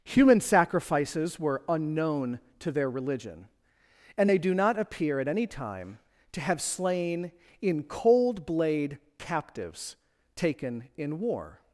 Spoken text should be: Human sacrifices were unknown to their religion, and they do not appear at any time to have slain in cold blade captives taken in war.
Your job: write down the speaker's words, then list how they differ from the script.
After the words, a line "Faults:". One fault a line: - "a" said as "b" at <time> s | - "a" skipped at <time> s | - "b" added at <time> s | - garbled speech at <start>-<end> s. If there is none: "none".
Human sacrifices were unknown to their religion, and they do not appear at any time to have slain in cold blade captives taken in war.
Faults:
none